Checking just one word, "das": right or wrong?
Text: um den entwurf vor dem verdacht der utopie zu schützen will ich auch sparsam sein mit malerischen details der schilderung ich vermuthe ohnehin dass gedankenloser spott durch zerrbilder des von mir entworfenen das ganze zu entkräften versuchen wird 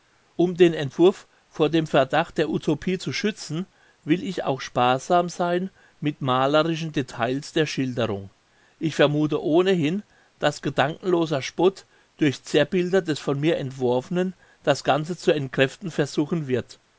right